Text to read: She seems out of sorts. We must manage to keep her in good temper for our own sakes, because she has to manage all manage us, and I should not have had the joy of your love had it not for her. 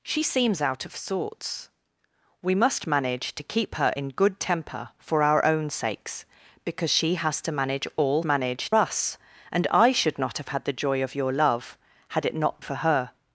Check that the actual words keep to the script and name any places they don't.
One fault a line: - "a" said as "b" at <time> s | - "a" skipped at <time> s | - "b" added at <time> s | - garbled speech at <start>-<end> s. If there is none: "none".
none